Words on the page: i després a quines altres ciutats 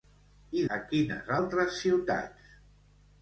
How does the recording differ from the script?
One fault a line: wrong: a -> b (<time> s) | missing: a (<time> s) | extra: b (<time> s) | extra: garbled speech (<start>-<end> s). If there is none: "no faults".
missing: després (0.6 s)